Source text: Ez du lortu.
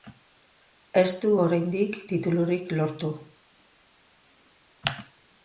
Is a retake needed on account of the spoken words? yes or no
yes